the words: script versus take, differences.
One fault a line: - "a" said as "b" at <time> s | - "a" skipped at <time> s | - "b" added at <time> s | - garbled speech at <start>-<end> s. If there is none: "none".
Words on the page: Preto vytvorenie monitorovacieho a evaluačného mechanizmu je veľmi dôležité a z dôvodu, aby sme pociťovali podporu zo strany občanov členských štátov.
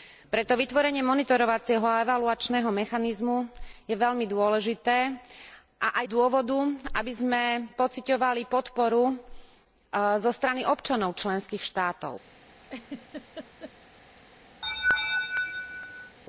none